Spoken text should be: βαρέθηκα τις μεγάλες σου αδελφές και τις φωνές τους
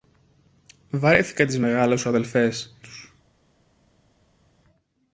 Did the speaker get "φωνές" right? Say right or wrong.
wrong